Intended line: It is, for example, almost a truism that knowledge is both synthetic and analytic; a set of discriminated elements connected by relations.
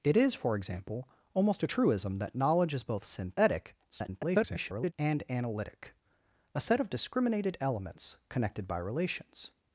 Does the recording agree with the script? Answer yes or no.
no